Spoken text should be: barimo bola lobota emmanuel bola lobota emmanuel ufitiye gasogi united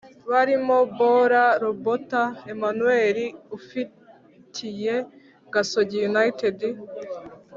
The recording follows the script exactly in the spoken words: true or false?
false